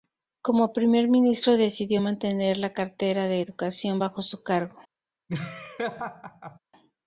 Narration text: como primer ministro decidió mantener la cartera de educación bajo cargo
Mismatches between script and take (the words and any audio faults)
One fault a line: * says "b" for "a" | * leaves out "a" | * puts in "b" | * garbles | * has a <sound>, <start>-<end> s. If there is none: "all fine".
* puts in "su"
* has a laugh, 5.3-6.6 s